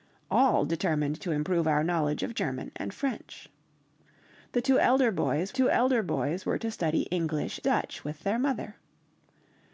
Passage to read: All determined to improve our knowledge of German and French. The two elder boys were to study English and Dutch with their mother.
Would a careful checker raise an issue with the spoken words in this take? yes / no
yes